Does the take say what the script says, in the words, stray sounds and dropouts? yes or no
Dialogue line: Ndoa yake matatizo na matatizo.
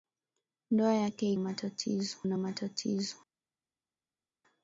yes